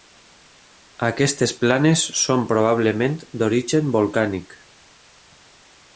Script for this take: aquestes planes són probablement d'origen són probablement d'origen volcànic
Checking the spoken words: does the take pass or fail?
fail